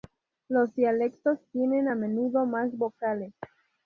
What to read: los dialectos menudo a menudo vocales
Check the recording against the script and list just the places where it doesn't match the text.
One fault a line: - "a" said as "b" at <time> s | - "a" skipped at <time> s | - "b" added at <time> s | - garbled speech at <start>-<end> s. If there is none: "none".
- "menudo" said as "tienen" at 1.5 s
- "más" added at 2.4 s